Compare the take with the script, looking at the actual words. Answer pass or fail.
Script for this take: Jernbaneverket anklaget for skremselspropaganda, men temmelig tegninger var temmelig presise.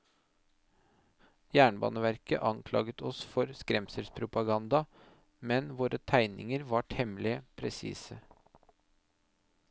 fail